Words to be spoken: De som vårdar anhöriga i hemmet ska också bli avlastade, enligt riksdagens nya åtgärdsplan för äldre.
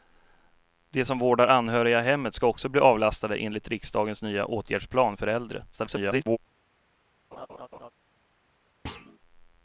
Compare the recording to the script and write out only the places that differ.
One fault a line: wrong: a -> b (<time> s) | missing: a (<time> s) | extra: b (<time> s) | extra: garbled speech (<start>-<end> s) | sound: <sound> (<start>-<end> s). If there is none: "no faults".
extra: garbled speech (5.7-6.4 s)
sound: laugh (7.3-7.9 s)
sound: thud (8.9-9.2 s)